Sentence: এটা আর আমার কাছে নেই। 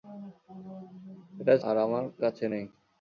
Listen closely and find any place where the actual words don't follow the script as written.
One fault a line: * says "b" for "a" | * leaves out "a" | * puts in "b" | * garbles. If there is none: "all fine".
all fine